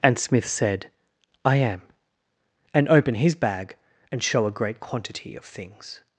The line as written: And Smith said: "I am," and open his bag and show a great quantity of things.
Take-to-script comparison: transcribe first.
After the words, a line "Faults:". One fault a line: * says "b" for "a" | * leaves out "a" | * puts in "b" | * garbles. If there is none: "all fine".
And Smith said: "I am," and open his bag and show a great quantity of things.
Faults:
all fine